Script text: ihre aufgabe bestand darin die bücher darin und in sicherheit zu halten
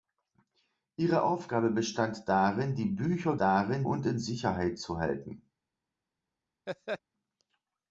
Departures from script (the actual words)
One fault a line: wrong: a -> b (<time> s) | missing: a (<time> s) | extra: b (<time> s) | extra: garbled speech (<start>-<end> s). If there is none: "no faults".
no faults